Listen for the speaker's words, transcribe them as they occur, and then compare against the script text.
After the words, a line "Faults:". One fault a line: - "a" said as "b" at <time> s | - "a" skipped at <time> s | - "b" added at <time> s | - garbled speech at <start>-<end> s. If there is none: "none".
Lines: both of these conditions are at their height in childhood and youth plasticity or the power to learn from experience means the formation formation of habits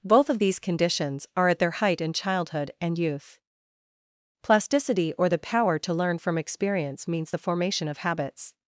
both of these conditions are at their height in childhood and youth plasticity or the power to learn from experience means the formation of habits
Faults:
- "formation" skipped at 7.9 s